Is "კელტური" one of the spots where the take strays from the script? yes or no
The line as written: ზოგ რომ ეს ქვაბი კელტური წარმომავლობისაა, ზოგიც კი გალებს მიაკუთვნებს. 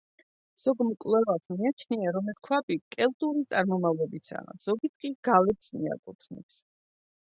no